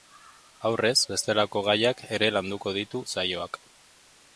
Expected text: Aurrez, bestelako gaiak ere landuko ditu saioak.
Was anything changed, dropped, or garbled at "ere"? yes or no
no